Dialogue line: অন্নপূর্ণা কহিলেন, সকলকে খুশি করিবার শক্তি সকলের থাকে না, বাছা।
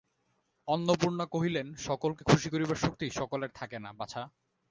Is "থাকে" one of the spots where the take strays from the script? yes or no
no